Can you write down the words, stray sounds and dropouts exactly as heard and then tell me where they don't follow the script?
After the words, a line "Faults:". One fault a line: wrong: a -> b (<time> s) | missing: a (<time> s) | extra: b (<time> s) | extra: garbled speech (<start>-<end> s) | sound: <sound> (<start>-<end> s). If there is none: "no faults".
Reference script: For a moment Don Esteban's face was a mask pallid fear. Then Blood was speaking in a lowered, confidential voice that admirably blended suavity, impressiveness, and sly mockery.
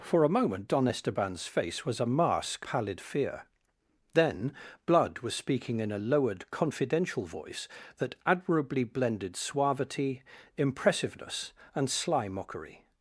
For a moment Don Esteban's face was a mask pallid fear. Then Blood was speaking in a lowered, confidential voice that admirably blended suavity, impressiveness, and sly mockery.
Faults:
no faults